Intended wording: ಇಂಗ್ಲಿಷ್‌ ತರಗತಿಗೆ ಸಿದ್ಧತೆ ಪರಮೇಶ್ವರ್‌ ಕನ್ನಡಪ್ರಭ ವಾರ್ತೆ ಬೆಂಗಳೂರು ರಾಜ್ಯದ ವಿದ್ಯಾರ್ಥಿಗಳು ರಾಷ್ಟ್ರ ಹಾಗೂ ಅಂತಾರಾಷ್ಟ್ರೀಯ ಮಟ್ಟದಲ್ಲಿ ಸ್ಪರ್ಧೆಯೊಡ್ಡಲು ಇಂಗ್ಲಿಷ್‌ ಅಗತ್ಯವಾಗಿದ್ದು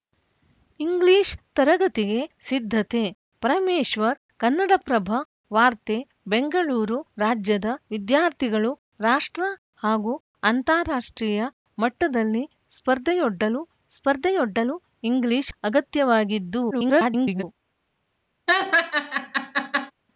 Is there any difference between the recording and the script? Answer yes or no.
yes